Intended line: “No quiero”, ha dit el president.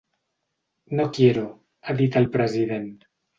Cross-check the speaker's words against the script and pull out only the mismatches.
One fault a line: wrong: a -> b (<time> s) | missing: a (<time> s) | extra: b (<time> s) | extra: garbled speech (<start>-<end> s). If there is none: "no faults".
no faults